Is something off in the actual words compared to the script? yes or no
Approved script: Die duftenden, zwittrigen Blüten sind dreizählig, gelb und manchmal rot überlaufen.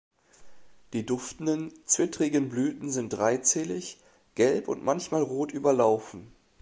no